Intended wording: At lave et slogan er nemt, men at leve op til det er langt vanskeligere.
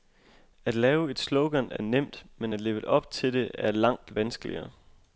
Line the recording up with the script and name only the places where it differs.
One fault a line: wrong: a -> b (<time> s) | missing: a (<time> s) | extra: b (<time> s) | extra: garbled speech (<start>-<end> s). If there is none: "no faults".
no faults